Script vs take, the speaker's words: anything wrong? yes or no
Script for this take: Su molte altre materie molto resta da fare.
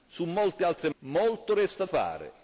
yes